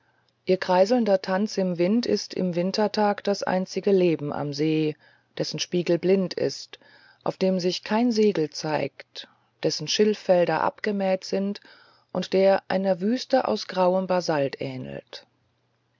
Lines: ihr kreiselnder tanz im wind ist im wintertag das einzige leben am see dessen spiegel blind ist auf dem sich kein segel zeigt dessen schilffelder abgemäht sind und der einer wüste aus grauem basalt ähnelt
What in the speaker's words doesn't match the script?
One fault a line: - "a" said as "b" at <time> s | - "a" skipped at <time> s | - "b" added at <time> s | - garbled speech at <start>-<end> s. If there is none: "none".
none